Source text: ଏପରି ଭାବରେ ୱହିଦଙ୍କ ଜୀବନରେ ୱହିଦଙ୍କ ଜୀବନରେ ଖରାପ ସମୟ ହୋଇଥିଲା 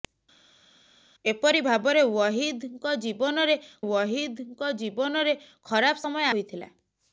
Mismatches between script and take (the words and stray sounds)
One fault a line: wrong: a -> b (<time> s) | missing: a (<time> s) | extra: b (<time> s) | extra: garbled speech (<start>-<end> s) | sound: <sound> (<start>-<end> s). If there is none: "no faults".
no faults